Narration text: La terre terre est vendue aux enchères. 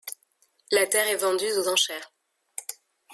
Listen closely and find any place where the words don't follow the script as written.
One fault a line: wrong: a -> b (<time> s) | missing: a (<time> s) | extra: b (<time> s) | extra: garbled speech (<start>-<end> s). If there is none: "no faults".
missing: terre (1.1 s)